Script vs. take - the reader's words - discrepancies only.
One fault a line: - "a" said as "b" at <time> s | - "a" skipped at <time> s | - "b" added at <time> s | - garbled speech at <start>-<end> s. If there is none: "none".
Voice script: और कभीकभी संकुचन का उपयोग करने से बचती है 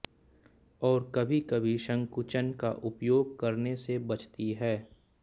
none